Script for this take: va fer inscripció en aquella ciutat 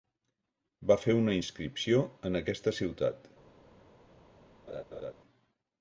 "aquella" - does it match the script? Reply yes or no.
no